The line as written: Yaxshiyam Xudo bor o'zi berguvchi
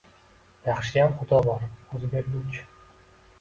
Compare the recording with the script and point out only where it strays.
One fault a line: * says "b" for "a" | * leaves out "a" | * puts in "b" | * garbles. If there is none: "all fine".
all fine